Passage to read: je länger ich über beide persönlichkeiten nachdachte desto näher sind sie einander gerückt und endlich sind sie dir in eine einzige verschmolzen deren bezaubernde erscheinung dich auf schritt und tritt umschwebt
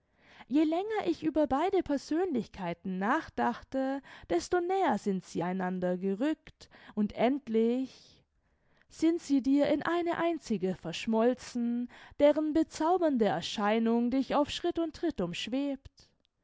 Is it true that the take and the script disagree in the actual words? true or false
false